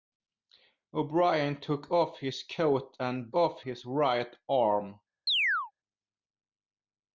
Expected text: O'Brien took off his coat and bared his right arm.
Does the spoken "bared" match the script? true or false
false